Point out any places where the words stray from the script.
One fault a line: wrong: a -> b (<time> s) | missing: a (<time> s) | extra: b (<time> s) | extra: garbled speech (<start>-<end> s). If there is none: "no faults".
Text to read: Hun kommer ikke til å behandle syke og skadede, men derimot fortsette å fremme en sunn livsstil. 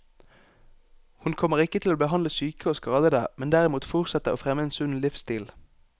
no faults